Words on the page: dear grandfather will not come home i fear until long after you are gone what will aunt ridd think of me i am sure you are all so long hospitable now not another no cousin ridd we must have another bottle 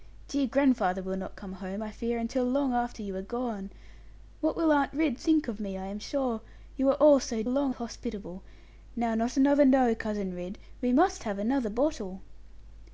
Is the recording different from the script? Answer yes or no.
no